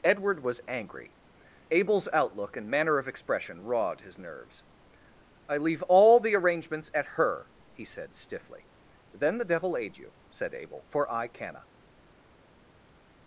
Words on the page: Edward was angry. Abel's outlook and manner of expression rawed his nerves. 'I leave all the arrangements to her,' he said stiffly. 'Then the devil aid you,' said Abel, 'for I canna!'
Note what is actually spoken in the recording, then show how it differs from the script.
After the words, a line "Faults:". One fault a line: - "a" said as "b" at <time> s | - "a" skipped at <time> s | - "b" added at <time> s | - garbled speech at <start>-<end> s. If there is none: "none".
Edward was angry. Abel's outlook and manner of expression rawed his nerves. 'I leave all the arrangements at her,' he said stiffly. 'Then the devil aid you,' said Abel, 'for I canna!'
Faults:
- "to" said as "at" at 6.9 s